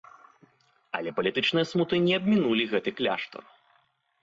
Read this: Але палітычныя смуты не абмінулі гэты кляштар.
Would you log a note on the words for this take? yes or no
no